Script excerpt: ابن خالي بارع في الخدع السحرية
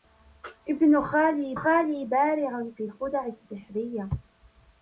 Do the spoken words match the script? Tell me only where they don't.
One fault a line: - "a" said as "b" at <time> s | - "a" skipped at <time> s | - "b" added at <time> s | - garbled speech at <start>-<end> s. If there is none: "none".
- "خالي" added at 1.5 s